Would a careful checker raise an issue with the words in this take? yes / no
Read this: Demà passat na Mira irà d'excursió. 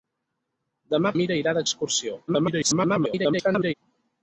yes